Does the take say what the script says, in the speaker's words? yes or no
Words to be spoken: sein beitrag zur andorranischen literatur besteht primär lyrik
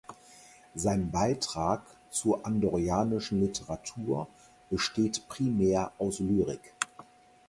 no